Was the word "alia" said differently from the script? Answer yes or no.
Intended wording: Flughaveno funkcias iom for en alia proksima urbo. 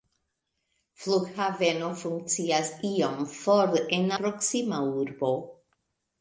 yes